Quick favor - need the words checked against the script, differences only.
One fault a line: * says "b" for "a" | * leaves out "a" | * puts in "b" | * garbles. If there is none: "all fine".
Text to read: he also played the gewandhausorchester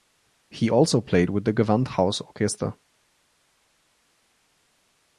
* puts in "with"